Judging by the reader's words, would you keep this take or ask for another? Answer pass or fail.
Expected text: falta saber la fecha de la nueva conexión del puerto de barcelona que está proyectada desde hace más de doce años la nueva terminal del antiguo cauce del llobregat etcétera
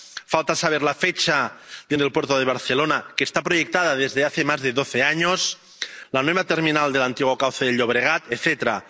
fail